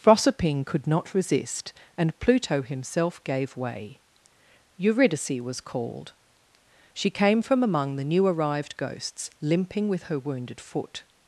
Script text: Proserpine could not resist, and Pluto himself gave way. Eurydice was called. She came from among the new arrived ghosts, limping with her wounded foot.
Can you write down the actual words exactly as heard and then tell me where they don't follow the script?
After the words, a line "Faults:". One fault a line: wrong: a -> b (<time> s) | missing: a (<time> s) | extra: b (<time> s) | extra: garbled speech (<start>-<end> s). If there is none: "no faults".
Proserpine could not resist, and Pluto himself gave way. Eurydice was called. She came from among the new arrived ghosts, limping with her wounded foot.
Faults:
no faults